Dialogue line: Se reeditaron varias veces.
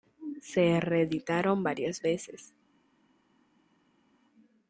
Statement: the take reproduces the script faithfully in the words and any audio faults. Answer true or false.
true